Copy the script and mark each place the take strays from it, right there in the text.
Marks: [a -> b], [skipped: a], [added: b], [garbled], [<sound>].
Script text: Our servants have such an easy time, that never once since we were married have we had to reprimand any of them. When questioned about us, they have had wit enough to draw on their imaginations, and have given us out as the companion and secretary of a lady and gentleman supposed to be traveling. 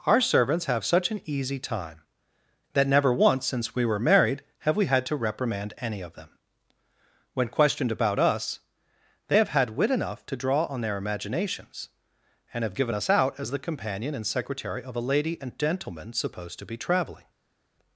Our servants have such an easy time, that never once since we were married have we had to reprimand any of them. When questioned about us, they have had wit enough to draw on their imaginations, and have given us out as the companion and secretary of a lady and gentleman supposed to be traveling.